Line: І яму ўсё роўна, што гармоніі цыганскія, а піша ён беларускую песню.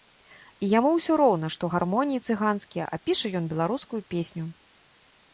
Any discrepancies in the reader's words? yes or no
no